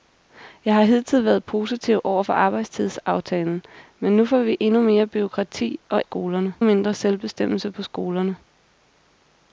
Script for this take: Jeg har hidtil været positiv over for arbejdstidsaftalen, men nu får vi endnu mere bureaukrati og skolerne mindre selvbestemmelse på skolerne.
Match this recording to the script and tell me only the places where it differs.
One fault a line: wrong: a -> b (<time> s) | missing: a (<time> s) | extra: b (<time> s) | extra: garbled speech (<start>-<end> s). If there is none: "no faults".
no faults